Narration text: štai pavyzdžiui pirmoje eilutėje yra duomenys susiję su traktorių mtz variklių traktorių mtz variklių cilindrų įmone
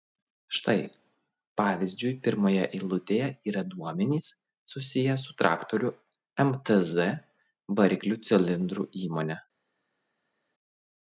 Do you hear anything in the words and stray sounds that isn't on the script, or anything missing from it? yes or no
yes